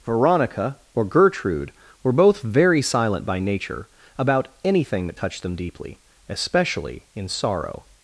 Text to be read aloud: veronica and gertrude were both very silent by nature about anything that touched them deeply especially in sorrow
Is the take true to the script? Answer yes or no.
no